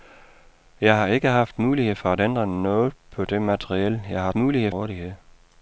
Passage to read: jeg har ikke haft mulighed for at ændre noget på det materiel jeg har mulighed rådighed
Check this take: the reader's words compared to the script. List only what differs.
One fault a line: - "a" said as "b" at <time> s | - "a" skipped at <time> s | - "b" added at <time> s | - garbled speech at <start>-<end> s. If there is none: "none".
none